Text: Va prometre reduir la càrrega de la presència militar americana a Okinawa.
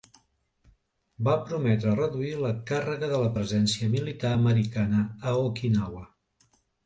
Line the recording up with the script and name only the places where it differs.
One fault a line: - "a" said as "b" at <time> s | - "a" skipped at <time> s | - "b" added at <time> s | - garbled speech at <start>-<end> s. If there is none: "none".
none